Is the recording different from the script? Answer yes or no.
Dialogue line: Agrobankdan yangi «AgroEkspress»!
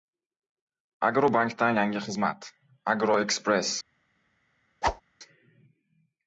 yes